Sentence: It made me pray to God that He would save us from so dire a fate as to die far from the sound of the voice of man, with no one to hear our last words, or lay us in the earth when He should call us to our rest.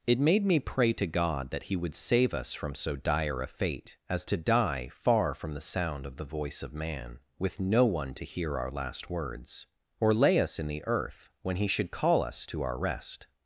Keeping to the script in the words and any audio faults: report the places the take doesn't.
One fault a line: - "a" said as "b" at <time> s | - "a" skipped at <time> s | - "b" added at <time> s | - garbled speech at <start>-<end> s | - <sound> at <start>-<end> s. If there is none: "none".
none